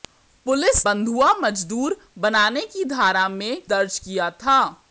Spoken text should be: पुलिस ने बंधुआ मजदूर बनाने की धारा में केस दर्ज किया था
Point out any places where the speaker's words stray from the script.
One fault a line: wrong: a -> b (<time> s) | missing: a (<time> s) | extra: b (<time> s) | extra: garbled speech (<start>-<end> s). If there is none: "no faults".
missing: ने (0.9 s)
missing: केस (3.6 s)